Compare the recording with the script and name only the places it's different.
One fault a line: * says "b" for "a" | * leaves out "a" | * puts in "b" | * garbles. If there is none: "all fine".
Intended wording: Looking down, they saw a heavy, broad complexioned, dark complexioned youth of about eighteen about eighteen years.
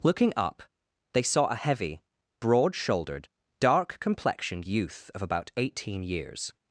* says "up" for "down"
* says "shouldered" for "complexioned"
* leaves out "about eighteen"